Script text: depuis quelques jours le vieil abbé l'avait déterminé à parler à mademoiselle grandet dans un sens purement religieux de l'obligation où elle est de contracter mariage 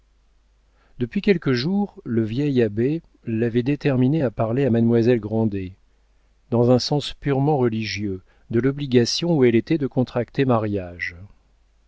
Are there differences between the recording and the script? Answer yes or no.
yes